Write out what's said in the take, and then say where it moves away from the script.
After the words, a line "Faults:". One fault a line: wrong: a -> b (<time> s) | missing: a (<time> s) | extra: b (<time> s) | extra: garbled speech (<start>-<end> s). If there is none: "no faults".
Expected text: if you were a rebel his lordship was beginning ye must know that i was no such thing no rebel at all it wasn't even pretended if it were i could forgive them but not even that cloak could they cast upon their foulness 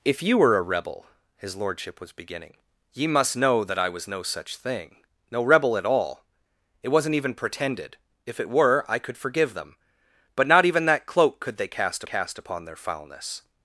if you were a rebel his lordship was beginning ye must know that i was no such thing no rebel at all it wasn't even pretended if it were i could forgive them but not even that cloak could they cast cast upon their foulness
Faults:
extra: cast (12.0 s)